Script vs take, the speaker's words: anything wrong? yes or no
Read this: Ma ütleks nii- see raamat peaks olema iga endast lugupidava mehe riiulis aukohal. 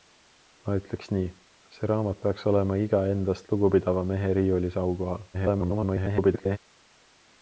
yes